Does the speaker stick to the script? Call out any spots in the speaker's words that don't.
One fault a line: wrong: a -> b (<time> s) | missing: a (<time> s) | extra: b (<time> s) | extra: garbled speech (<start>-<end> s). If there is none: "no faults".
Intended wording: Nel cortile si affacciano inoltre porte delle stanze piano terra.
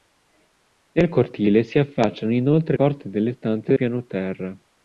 no faults